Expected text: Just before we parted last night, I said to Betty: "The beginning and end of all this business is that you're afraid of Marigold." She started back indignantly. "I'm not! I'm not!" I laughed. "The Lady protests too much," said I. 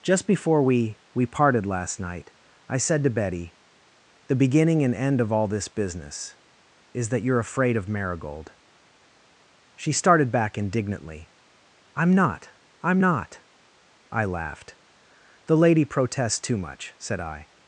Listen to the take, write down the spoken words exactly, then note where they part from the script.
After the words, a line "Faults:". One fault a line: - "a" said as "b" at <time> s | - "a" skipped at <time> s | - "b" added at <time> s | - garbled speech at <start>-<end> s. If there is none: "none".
Just before we we parted last night, I said to Betty: "The beginning and end of all this business is that you're afraid of Marigold." She started back indignantly. "I'm not! I'm not!" I laughed. "The Lady protests too much," said I.
Faults:
- "we" added at 1.1 s